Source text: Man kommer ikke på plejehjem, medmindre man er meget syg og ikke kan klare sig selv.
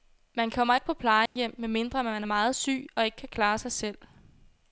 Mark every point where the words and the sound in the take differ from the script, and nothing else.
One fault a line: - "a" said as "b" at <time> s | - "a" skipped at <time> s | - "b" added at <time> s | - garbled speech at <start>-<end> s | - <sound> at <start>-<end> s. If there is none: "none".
- dropout at 1.3-1.4 s